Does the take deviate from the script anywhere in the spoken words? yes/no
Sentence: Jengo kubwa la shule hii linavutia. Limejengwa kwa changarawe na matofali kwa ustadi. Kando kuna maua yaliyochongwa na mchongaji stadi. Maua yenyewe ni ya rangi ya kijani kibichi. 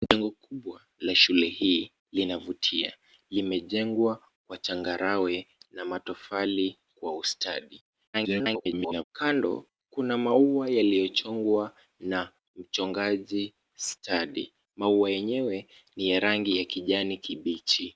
yes